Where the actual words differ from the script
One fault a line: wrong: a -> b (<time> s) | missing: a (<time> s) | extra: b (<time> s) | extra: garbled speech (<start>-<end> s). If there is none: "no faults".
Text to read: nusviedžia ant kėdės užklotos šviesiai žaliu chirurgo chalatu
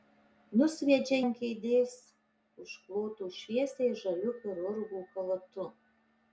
no faults